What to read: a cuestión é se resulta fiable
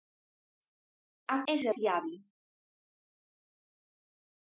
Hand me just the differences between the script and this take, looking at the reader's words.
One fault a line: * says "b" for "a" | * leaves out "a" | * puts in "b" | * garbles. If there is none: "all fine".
* leaves out "cuestión"
* leaves out "resulta"